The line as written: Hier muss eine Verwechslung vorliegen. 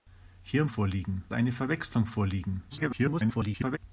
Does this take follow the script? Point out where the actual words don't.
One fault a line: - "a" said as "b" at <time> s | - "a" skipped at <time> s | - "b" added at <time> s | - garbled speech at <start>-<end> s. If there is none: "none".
- "muss" said as "vorliegen" at 0.7 s
- garbled speech at 2.7-3.8 s